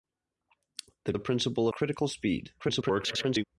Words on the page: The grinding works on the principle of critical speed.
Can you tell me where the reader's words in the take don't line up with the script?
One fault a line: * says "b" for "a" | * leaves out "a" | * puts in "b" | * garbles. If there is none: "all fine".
* leaves out "grinding works on"
* leaves out "of"
* garbles